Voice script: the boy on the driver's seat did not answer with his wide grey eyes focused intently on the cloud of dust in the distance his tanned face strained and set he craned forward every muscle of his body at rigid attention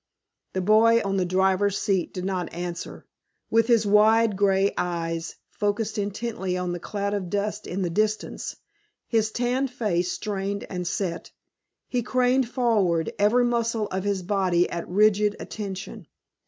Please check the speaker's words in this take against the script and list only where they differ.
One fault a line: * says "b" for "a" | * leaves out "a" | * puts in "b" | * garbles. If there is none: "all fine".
all fine